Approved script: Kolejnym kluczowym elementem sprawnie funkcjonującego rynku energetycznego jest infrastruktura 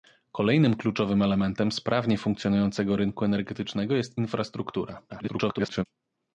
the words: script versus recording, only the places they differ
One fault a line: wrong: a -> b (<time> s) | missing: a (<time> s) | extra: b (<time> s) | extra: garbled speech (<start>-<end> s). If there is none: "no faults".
extra: garbled speech (5.1-5.8 s)